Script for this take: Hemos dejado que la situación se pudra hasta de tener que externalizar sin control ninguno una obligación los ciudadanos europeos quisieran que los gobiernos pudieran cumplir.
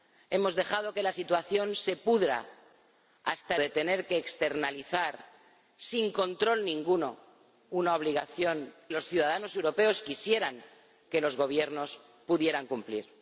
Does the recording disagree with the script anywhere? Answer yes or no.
no